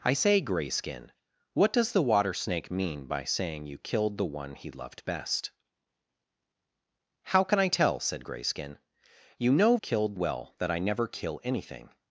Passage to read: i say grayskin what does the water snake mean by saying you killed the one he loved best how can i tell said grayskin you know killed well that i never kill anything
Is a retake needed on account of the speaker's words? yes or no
no